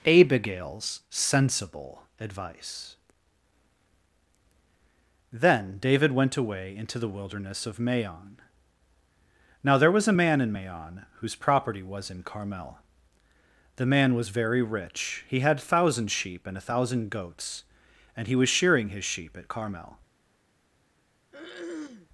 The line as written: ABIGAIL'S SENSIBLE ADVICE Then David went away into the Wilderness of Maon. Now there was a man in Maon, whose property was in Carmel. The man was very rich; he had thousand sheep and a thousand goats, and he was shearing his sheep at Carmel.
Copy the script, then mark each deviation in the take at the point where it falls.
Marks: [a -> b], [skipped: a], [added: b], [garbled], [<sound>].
ABIGAIL'S SENSIBLE ADVICE Then David went away into the Wilderness of Maon. Now there was a man in Maon, whose property was in Carmel. The man was very rich; he had thousand sheep and a thousand goats, and he was shearing his sheep at Carmel. [throat clearing]